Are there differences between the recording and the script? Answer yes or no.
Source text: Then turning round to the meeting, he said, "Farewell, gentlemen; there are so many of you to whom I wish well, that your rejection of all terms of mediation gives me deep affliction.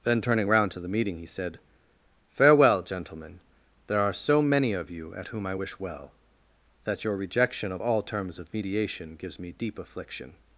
yes